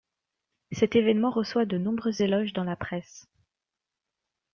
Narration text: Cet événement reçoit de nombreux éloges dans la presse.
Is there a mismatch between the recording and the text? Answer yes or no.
no